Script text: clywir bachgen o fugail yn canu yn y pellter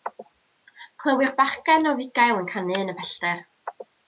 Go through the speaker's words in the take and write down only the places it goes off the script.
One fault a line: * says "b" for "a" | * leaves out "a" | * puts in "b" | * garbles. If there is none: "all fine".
all fine